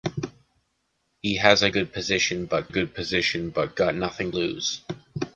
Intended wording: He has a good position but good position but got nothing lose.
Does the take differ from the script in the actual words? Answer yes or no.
no